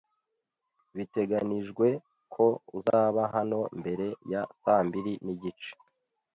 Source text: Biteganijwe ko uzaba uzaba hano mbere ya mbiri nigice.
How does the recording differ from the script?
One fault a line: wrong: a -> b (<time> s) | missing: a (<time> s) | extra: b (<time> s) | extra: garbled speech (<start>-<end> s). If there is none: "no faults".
missing: uzaba (3.2 s)
extra: saa (4.6 s)